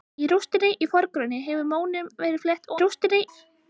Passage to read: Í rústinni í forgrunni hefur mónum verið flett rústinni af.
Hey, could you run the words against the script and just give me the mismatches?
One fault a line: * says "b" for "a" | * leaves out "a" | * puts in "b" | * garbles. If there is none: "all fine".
all fine